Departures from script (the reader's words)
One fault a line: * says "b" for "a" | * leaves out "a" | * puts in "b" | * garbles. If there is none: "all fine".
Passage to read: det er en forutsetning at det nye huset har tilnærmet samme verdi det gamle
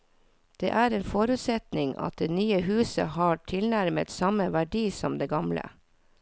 * puts in "som"